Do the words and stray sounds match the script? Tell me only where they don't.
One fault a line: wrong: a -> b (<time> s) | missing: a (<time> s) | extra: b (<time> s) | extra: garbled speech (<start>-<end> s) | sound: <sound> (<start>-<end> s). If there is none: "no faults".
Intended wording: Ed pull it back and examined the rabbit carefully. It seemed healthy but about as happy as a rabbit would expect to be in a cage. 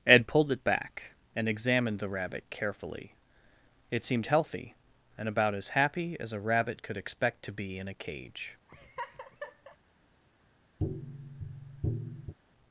wrong: pull -> pulled (0.2 s)
wrong: but -> and (5.2 s)
wrong: would -> could (6.8 s)
sound: laugh (8.7-9.8 s)
sound: tap (10.8-12.3 s)